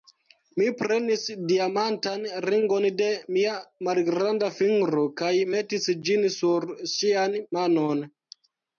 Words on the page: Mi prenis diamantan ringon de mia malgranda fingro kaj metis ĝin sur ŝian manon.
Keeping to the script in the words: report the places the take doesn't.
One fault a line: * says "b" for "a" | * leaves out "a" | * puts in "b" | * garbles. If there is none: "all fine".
all fine